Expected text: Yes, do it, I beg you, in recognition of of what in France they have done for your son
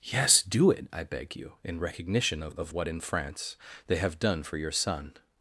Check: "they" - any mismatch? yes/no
no